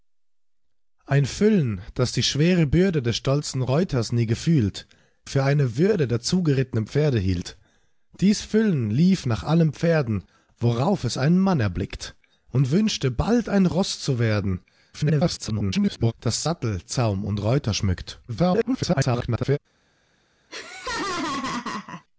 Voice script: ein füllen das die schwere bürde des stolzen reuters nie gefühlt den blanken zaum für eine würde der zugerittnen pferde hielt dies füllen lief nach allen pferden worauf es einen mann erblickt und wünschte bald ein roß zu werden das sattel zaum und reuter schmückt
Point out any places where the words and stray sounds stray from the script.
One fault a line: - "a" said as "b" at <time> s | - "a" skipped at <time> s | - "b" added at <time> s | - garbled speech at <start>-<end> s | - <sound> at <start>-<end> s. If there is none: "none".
- "den blanken zaum" skipped at 4.9 s
- garbled speech at 14.9-16.1 s
- garbled speech at 18.3-19.6 s
- laugh at 20.5-22.0 s